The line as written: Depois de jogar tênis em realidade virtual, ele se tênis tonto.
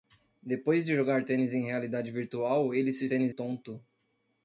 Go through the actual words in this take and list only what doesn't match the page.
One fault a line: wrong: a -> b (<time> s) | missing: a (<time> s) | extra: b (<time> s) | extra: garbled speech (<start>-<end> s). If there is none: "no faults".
no faults